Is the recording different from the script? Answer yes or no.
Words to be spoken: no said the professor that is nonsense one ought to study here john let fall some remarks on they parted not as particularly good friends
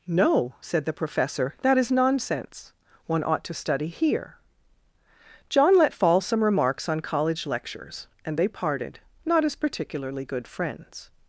yes